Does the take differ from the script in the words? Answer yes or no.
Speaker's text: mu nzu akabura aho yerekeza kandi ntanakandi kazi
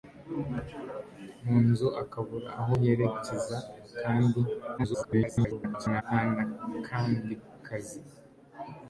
yes